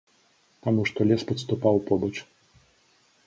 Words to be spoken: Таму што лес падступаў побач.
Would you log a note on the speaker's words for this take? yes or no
no